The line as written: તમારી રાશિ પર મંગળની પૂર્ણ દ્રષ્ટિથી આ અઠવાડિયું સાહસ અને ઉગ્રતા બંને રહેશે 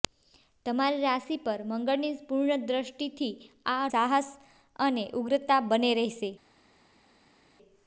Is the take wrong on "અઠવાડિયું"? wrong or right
wrong